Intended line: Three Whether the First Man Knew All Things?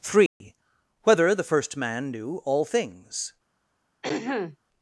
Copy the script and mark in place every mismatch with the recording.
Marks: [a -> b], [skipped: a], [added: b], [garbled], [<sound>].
Three [dropout] Whether the First Man Knew All Things? [throat clearing]